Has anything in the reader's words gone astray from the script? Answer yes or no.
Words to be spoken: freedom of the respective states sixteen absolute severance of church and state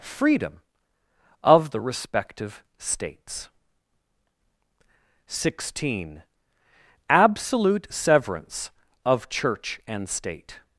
no